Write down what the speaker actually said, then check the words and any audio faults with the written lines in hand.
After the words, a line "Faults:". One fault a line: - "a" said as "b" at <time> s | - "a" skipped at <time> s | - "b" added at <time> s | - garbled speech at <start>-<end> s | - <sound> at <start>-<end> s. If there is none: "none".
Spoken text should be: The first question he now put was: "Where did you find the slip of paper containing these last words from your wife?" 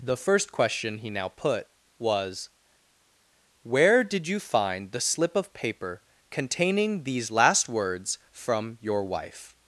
The first question he now put was: "Where did you find the slip of paper containing these last words from your wife?"
Faults:
none